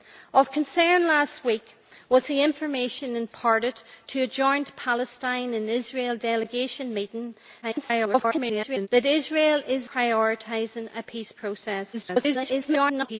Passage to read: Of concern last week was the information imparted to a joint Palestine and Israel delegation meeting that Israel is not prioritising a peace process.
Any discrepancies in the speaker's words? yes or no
yes